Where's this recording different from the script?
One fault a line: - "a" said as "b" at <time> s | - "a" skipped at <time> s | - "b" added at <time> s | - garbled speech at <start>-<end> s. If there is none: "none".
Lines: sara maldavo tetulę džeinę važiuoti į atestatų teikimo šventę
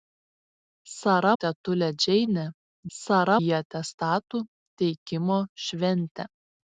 - "maldavo" skipped at 1.3 s
- "važiuoti" said as "sara" at 3.0 s